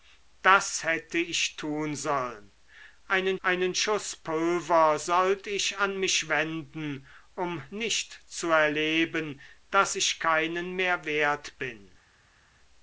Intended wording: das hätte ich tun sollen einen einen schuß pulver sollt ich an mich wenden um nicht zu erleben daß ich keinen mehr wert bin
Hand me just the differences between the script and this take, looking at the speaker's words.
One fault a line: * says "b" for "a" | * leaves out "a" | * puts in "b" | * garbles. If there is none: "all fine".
all fine